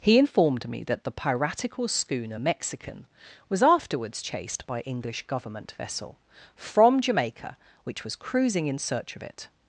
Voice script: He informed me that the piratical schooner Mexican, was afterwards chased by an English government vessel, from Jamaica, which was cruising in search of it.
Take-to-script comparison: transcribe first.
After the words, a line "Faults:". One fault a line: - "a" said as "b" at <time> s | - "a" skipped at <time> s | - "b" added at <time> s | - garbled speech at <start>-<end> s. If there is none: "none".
He informed me that the piratical schooner Mexican, was afterwards chased by English government vessel, from Jamaica, which was cruising in search of it.
Faults:
- "an" skipped at 4.8 s